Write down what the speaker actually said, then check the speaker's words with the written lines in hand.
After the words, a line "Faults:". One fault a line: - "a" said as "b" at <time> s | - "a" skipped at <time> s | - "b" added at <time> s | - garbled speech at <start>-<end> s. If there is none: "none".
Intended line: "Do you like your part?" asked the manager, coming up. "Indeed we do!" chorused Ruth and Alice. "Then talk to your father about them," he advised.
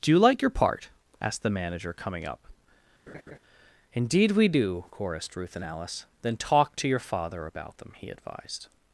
"Do you like your part?" asked the manager, coming up. "Indeed we do!" chorused Ruth and Alice. "Then talk to your father about them," he advised.
Faults:
none